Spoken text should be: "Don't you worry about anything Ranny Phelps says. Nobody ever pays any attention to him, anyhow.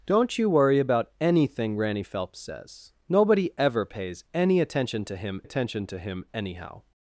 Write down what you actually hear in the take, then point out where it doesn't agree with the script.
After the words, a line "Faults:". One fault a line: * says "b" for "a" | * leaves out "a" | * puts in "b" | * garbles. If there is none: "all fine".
"Don't you worry about anything Ranny Phelps says. Nobody ever pays any attention to him attention to him, anyhow.
Faults:
* puts in "attention to him"